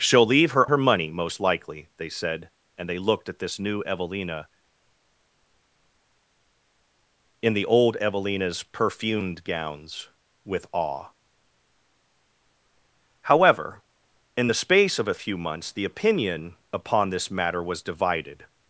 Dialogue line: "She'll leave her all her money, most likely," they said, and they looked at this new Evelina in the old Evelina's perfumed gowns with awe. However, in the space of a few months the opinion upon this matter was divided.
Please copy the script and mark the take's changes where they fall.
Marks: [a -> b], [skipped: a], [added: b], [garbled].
"She'll leave her [skipped: all] her money, most likely," they said, and they looked at this new Evelina in the old Evelina's perfumed gowns with awe. However, in the space of a few months the opinion upon this matter was divided.